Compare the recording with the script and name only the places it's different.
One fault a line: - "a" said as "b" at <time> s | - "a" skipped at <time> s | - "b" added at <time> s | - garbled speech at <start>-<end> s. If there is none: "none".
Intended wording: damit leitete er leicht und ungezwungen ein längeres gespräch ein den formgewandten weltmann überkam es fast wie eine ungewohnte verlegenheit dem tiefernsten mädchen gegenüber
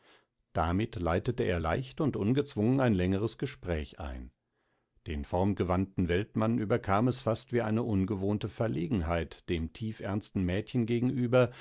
none